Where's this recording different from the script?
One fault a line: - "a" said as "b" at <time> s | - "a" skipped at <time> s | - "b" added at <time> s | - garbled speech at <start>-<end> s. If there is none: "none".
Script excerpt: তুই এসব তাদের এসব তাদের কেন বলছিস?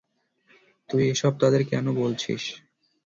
- "এসব তাদের" skipped at 1.6 s